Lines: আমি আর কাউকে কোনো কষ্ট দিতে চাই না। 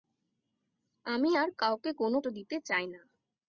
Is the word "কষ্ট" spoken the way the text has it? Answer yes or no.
no